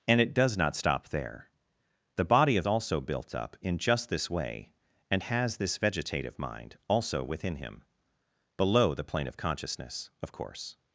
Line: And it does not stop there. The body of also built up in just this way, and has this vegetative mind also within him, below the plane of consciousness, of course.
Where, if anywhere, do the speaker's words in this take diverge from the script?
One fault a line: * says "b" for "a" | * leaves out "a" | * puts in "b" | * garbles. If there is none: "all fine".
all fine